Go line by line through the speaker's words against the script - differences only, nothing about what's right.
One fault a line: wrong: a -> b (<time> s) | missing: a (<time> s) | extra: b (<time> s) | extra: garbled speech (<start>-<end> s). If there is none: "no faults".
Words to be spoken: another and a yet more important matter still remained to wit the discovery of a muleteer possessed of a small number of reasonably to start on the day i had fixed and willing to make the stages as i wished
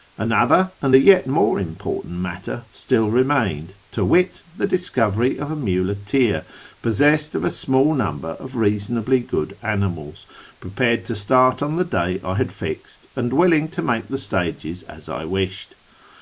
extra: good animals prepared (9.2 s)